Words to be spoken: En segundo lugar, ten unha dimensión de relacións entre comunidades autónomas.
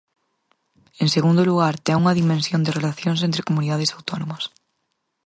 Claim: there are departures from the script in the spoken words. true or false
false